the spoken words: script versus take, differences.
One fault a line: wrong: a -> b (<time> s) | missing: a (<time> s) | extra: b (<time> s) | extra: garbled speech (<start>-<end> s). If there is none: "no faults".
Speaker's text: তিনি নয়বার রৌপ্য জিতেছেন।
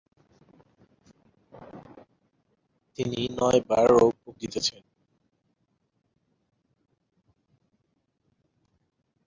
no faults